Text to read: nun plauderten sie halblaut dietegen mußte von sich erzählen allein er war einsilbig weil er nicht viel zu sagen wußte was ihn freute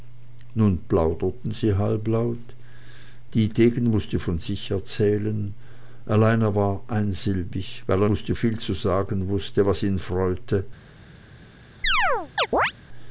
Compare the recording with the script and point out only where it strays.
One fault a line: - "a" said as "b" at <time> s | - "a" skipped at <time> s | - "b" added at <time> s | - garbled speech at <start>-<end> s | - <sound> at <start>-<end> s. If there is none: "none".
- "nicht" said as "mußte" at 8.1 s
- chirp at 11.8-12.7 s